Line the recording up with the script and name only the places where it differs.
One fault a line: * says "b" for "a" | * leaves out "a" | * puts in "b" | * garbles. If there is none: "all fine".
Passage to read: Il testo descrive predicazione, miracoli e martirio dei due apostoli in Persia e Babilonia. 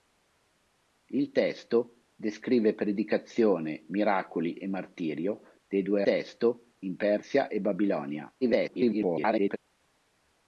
* says "testo" for "apostoli"
* garbles